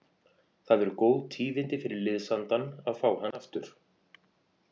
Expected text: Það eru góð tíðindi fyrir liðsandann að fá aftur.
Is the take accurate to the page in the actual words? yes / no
no